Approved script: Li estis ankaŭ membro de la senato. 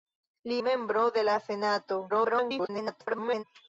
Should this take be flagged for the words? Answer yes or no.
yes